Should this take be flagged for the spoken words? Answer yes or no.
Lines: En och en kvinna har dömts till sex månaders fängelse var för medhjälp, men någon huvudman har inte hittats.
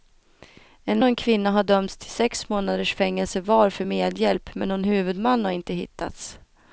no